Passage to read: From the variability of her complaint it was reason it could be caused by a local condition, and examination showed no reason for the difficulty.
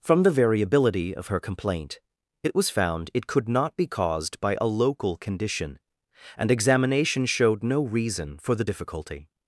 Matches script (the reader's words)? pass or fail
fail